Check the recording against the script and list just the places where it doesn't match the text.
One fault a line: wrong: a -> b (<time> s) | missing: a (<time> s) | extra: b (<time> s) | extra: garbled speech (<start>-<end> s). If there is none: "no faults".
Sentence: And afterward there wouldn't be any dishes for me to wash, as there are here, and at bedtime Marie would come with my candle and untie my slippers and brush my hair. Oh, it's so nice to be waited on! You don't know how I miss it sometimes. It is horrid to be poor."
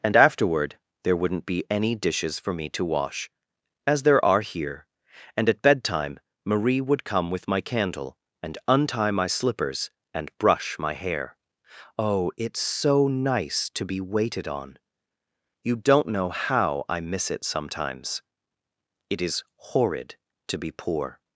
no faults